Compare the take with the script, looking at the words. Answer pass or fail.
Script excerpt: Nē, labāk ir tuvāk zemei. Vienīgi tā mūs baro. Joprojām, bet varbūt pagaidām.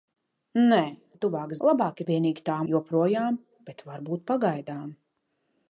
fail